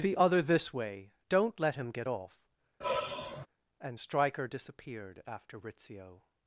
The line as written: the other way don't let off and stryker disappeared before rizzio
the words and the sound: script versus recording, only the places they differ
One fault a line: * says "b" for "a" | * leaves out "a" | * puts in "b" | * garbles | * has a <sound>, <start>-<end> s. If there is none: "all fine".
* puts in "this"
* puts in "him get"
* has a sigh, 2.8-3.5 s
* says "after" for "before"